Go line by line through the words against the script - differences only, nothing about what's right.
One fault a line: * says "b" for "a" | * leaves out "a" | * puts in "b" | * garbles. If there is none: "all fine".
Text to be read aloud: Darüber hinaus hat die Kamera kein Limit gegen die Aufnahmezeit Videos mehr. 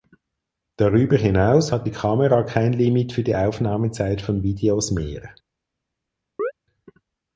* says "für" for "gegen"
* puts in "von"